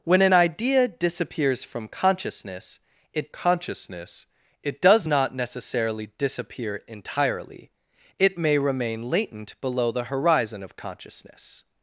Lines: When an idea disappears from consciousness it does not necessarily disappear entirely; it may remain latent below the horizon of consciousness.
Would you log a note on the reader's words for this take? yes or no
yes